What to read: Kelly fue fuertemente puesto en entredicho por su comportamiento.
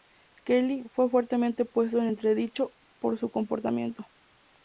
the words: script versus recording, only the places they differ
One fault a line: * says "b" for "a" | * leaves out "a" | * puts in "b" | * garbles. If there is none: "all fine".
all fine